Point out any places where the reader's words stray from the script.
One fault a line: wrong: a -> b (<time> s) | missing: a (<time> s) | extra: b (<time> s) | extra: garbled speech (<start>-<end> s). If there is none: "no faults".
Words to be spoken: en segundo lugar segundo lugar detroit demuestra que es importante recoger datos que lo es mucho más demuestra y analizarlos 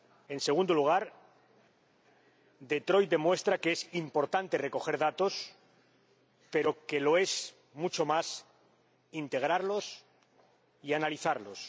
missing: segundo lugar (1.1 s)
extra: pero (6.5 s)
wrong: demuestra -> integrarlos (9.1 s)